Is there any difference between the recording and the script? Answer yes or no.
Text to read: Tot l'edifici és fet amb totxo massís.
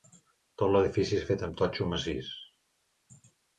no